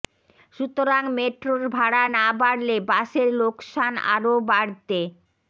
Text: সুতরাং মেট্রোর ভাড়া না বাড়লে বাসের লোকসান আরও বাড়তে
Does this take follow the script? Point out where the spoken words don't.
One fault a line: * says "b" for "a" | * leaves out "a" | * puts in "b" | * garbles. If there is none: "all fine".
all fine